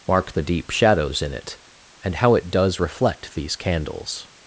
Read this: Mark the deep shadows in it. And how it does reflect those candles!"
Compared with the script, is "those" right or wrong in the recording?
wrong